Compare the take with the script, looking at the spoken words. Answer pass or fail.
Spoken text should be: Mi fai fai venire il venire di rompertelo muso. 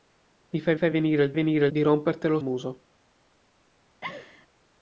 pass